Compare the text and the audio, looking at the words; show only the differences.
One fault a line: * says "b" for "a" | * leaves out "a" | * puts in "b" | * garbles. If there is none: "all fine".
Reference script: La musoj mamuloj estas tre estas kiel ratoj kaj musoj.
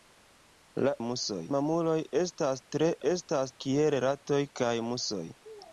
all fine